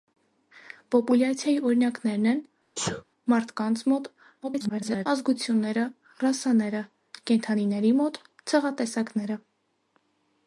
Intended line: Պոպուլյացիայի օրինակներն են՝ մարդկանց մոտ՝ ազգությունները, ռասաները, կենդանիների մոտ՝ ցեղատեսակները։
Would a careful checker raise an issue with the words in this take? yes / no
yes